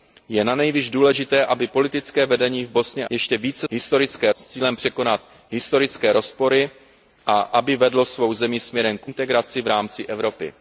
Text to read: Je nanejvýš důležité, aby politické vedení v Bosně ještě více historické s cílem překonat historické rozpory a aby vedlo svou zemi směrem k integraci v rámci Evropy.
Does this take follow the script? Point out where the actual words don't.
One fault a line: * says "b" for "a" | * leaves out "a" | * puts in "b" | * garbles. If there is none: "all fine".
all fine